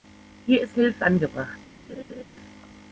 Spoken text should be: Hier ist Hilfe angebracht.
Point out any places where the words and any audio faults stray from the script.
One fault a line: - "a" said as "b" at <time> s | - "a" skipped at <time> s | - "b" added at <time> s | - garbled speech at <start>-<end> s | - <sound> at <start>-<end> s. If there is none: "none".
- laugh at 1.9-2.2 s